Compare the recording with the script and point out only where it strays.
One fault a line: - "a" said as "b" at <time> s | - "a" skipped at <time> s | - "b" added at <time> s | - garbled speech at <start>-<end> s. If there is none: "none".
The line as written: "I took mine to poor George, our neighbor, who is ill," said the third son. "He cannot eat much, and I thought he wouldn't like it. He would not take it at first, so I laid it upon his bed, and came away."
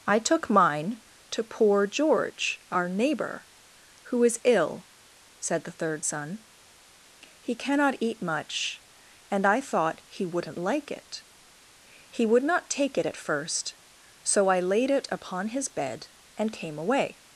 none